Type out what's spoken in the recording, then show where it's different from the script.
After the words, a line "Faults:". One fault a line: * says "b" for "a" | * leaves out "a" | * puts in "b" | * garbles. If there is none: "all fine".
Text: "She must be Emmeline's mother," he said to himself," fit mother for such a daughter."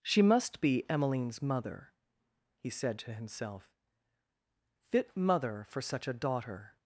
"She must be Emmeline's mother," he said to himself," fit mother for such a daughter."
Faults:
all fine